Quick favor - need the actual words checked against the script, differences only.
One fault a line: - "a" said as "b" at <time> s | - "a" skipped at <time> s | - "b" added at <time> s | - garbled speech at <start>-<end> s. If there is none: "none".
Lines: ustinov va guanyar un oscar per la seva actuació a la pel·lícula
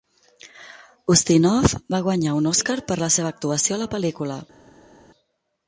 none